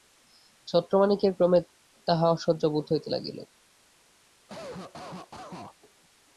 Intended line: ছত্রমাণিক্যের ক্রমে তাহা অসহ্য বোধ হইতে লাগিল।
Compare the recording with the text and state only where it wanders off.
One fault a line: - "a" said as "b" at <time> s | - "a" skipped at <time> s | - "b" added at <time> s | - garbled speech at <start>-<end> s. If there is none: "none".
none